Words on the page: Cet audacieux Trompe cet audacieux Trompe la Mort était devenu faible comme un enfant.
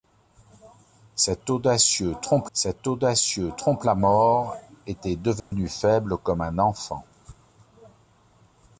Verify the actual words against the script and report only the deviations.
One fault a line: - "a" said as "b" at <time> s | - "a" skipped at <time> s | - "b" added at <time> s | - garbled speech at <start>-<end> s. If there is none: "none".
none